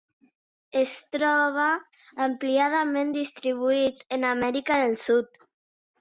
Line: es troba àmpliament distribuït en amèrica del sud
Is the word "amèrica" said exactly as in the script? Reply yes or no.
yes